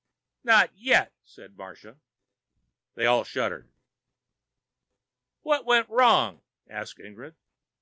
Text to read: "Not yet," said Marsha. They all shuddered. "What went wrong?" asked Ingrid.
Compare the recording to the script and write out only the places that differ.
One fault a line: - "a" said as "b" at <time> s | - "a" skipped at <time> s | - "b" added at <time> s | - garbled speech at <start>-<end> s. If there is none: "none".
none